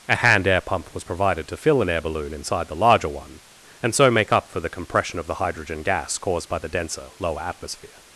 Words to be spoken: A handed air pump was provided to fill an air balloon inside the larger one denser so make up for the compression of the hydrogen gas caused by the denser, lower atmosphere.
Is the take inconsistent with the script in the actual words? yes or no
yes